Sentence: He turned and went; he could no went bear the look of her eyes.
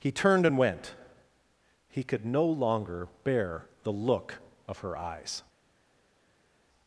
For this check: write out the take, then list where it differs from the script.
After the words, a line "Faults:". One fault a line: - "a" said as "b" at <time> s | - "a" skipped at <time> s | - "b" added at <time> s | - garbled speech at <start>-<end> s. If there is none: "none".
He turned and went; he could no longer bear the look of her eyes.
Faults:
- "went" said as "longer" at 2.4 s